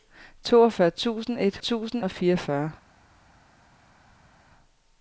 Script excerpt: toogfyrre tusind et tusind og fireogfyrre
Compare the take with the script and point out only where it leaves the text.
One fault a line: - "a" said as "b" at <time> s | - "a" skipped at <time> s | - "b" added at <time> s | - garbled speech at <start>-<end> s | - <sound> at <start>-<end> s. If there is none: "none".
none